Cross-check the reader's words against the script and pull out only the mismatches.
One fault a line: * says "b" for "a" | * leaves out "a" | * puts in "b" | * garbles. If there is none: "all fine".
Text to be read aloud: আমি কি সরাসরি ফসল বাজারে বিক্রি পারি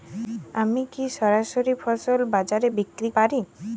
all fine